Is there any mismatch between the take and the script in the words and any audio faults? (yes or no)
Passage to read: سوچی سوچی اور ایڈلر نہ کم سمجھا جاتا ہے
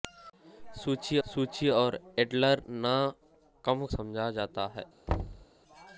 yes